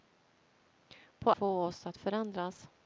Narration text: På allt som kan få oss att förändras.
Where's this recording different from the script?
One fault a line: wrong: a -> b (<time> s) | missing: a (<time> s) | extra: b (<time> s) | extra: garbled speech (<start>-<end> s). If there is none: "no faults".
missing: allt som kan (1.3 s)